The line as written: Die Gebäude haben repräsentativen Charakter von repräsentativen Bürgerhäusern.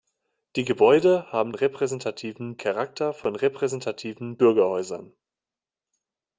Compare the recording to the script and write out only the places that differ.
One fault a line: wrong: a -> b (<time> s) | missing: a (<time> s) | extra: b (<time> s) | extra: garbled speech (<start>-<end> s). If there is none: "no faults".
no faults